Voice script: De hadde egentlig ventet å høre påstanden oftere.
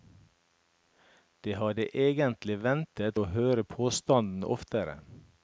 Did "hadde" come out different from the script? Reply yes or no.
no